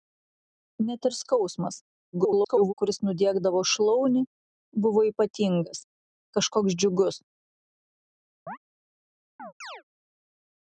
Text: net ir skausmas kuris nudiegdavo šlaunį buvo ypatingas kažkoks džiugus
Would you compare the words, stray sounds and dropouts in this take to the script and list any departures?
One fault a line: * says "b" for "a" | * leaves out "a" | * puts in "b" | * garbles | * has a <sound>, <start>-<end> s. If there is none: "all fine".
* garbles
* has a chirp, 8.5-8.6 s
* has a chirp, 9.4-9.8 s